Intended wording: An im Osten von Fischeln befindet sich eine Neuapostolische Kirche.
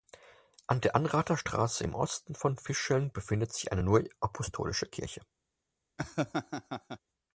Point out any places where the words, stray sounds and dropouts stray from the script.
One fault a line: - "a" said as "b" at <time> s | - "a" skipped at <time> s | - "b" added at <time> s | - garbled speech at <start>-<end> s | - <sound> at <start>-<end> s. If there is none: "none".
- "der Anrather Straße" added at 0.8 s
- laugh at 6.0-7.0 s